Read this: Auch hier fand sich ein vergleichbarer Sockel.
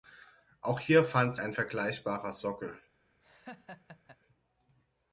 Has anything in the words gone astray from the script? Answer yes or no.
yes